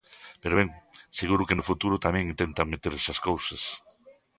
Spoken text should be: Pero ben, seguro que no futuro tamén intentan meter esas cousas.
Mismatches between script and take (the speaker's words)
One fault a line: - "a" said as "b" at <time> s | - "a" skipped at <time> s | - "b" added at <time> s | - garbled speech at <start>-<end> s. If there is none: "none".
none